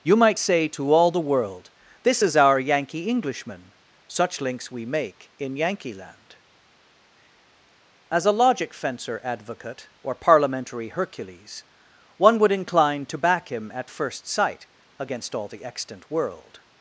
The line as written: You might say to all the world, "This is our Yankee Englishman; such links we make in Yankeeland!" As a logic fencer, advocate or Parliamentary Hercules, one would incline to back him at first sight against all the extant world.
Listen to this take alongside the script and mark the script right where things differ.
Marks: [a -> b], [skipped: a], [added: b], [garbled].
You might say to all the world, "This is our Yankee Englishman; such links we make in Yankeeland!" As a logic fencer, advocate or Parliamentary Hercules, one would incline to back him at first sight against all the extant world.